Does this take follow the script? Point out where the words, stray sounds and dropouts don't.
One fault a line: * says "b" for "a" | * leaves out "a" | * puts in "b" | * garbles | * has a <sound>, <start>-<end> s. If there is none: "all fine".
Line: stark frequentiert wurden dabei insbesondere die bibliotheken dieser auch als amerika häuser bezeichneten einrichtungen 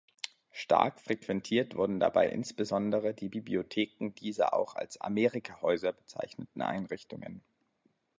all fine